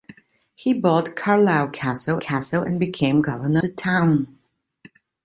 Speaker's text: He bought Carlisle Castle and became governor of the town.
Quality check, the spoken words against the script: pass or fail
fail